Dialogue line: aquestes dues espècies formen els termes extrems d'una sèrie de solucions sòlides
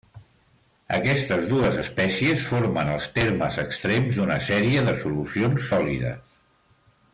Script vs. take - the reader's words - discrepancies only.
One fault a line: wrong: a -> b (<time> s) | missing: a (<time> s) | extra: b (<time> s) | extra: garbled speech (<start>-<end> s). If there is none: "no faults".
no faults